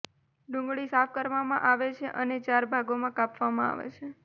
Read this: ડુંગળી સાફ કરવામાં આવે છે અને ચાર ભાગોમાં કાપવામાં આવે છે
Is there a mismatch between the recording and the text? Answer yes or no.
no